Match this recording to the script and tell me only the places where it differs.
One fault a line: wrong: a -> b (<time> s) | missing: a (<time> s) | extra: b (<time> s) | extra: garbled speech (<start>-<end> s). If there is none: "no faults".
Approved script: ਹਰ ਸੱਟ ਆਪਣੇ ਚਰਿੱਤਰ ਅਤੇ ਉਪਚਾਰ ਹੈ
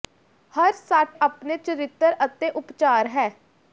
no faults